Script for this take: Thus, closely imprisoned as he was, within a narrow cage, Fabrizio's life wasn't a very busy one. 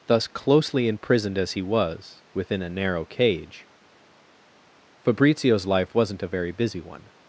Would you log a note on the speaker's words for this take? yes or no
no